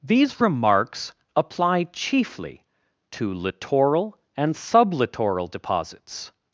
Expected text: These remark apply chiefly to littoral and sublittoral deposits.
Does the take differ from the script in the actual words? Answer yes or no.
yes